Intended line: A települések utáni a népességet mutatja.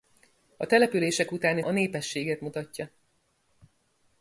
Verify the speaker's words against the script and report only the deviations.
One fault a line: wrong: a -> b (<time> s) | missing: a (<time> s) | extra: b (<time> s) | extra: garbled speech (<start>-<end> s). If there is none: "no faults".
no faults